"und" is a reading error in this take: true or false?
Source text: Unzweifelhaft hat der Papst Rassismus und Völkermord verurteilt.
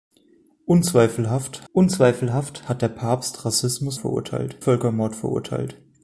true